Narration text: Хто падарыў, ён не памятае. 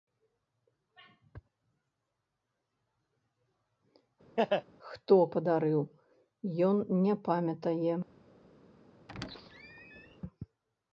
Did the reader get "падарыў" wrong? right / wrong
right